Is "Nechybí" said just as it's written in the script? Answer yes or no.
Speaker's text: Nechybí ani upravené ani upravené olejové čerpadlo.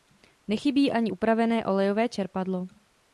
yes